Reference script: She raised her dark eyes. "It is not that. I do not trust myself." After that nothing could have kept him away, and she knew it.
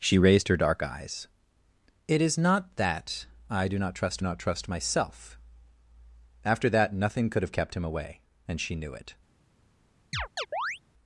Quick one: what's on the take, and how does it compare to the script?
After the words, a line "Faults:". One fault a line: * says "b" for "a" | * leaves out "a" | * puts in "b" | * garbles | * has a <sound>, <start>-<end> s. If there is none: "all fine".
She raised her dark eyes. "It is not that. I do not trust not trust myself." After that nothing could have kept him away, and she knew it.
Faults:
* puts in "not trust"
* has a chirp, 10.1-10.8 s